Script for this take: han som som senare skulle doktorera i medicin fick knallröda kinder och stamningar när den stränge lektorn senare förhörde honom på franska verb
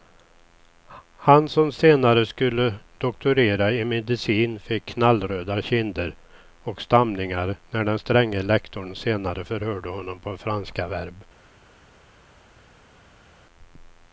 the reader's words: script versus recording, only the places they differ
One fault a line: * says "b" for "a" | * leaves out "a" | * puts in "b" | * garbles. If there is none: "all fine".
* leaves out "som"